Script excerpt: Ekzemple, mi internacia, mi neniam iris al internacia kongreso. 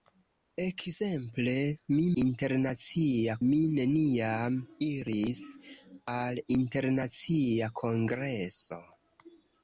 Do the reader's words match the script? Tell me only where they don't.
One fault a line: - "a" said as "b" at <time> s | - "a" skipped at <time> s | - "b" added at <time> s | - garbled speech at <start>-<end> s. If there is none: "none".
none